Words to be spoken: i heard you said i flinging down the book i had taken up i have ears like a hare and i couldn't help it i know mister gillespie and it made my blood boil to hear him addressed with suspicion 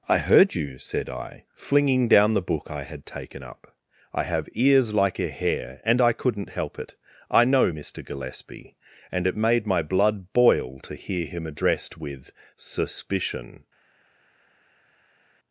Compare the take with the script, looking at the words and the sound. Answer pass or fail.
pass